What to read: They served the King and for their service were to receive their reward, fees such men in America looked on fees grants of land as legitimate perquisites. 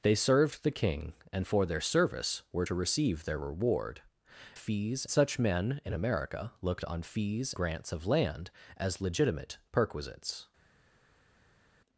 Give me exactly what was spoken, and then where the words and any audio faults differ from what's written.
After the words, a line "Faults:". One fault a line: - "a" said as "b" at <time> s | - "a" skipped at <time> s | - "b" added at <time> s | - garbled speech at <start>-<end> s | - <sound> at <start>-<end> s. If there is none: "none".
They served the King and for their service were to receive their reward, fees such men in America looked on fees grants of land as legitimate perquisites.
Faults:
none